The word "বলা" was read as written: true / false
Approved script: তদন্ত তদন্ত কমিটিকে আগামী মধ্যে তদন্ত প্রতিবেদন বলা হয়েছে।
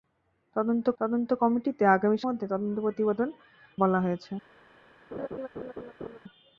true